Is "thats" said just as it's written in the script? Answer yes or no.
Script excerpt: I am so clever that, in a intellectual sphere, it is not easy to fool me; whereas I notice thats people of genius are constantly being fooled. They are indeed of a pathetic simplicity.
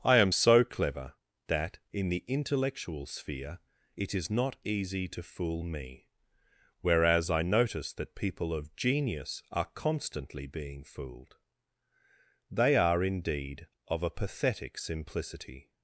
no